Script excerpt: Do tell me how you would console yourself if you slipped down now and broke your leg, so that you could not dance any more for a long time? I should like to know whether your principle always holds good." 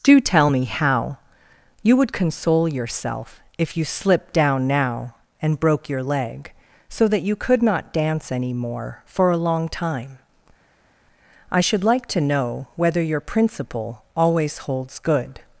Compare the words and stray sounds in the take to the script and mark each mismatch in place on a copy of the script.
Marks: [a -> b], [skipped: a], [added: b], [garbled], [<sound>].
Do tell me how you would console yourself if you slipped down now and broke your leg, so that you could not dance any more for a long time? I should like to know whether your principle always holds good."